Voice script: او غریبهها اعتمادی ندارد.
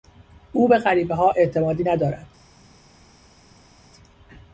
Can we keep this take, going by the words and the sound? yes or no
no